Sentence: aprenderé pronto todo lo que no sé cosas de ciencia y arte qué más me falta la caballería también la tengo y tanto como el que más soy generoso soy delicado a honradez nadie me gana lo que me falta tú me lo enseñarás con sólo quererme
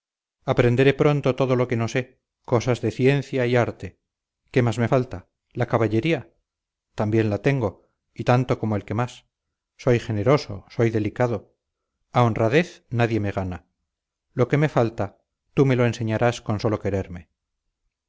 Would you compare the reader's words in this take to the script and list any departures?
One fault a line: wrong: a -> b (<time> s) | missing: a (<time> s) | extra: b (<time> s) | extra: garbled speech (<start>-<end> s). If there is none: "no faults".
no faults